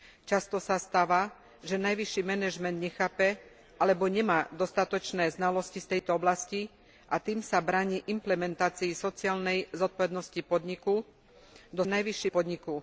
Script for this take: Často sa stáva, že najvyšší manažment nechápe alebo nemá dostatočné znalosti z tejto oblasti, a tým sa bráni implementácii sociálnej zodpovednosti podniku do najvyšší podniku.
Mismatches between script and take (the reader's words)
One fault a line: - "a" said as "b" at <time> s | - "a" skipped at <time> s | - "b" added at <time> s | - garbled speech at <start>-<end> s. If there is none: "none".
none